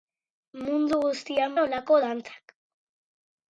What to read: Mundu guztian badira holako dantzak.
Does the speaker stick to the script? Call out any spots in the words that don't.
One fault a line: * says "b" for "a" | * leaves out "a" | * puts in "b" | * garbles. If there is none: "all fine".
* leaves out "badira"